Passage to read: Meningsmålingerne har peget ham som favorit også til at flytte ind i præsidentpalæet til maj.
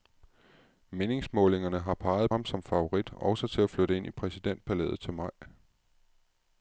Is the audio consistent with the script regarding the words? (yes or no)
yes